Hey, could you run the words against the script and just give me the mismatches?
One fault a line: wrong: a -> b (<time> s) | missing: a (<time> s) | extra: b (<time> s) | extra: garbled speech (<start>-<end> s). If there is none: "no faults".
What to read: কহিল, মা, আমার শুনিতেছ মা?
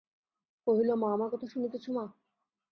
extra: কথা (1.3 s)